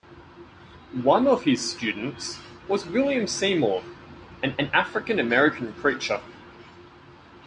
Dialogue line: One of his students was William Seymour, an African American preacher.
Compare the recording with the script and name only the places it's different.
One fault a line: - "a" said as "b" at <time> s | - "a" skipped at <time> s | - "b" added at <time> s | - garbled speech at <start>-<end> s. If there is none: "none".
- "an" added at 4.6 s